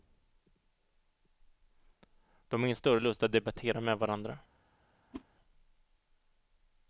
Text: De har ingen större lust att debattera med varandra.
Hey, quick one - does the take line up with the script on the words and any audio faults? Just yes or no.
no